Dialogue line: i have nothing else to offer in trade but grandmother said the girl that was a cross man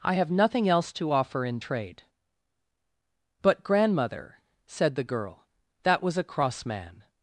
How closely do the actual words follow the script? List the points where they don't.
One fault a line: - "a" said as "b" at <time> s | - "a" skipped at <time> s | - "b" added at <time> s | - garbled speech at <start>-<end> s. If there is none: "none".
none